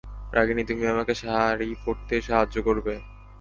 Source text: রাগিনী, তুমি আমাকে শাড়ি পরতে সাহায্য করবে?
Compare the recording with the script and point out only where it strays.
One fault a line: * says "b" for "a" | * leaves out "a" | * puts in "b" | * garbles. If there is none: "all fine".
all fine